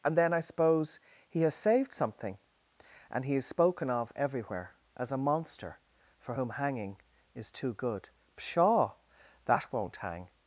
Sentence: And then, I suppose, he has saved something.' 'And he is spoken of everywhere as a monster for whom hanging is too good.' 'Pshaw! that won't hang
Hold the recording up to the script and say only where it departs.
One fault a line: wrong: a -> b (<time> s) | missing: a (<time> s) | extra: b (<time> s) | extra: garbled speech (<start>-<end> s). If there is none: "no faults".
no faults